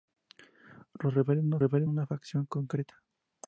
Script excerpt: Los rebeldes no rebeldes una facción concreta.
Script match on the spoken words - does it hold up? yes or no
yes